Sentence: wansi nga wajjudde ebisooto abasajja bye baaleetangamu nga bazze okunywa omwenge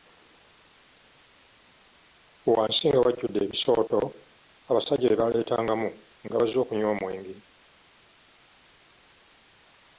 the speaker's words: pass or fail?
pass